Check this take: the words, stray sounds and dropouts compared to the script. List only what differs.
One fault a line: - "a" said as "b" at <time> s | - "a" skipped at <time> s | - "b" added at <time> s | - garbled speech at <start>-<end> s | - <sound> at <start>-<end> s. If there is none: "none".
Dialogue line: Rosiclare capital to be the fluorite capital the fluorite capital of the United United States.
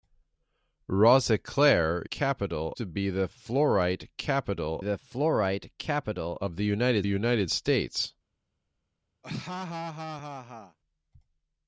- laugh at 9.2-10.8 s